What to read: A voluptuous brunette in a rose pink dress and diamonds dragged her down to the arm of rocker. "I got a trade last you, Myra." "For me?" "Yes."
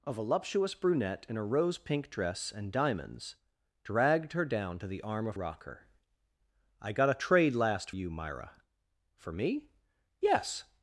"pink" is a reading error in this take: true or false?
false